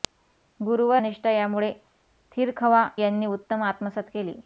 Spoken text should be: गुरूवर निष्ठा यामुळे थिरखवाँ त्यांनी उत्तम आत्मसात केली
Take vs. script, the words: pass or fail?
pass